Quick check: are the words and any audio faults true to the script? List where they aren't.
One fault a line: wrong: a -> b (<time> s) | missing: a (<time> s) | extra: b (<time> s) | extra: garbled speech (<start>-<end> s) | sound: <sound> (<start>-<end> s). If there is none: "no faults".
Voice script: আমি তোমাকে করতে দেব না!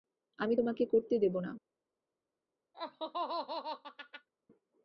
sound: laugh (2.7-4.3 s)